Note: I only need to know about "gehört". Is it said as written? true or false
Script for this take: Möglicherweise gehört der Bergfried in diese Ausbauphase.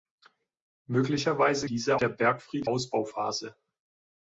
false